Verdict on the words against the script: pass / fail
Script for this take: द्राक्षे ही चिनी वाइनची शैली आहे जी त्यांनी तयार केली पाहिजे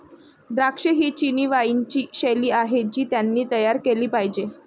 pass